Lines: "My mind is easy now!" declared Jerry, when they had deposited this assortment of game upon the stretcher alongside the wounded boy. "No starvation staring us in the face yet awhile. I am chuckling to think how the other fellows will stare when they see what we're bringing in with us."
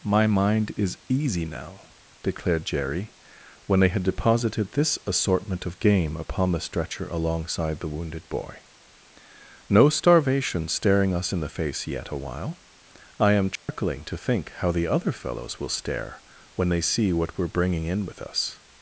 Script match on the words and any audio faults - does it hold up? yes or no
no